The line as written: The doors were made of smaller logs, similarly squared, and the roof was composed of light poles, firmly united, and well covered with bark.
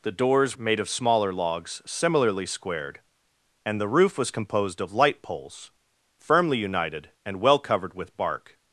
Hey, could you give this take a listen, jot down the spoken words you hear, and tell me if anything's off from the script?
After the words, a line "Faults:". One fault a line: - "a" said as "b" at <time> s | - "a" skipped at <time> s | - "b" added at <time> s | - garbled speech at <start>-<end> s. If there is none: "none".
The doors made of smaller logs, similarly squared, and the roof was composed of light poles, firmly united, and well covered with bark.
Faults:
- "were" skipped at 0.6 s